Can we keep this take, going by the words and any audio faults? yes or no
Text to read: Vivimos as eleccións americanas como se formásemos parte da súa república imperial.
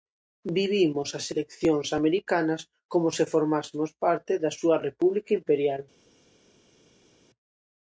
yes